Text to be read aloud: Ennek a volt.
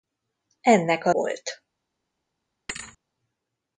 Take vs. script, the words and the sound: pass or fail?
fail